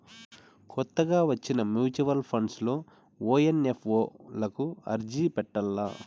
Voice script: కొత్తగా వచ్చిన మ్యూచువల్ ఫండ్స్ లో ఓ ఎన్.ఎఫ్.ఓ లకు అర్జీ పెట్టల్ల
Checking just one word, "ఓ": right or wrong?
right